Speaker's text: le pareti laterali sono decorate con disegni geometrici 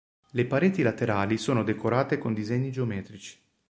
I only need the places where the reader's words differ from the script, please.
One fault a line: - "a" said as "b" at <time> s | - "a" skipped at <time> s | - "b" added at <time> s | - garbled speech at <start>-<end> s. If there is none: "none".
none